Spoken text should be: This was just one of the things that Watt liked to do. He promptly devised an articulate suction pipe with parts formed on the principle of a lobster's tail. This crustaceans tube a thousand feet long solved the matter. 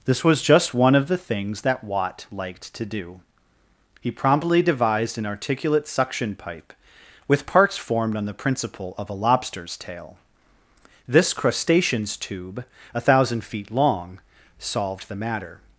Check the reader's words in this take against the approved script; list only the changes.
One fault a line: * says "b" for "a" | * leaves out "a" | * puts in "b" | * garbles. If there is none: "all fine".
all fine